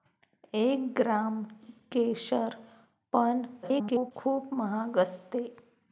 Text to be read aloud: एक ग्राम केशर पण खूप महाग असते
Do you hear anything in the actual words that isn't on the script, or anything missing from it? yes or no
yes